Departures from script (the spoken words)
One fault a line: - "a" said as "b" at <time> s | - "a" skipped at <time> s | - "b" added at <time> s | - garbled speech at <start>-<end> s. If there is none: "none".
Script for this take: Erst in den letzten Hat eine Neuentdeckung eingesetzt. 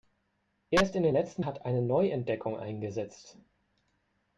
none